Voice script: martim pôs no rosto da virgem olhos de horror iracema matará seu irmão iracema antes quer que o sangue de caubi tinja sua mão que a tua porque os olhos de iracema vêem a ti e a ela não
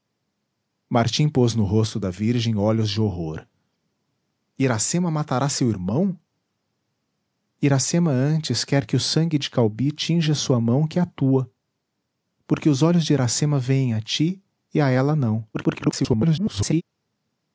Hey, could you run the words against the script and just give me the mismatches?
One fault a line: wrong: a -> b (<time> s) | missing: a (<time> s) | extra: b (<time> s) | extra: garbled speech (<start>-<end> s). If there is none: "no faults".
extra: garbled speech (15.5-16.8 s)